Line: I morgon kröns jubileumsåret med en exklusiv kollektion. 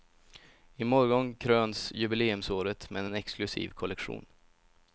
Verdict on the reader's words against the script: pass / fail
pass